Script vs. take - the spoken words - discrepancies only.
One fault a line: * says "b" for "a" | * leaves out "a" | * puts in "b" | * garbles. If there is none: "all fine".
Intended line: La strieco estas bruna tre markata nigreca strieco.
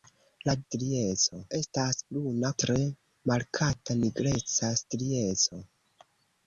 all fine